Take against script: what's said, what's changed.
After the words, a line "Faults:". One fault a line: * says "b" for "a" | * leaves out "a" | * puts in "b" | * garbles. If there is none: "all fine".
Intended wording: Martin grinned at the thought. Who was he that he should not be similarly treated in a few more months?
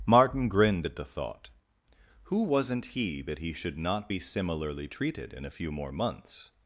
Martin grinned at the thought. Who wasn't he that he should not be similarly treated in a few more months?
Faults:
* says "wasn't" for "was"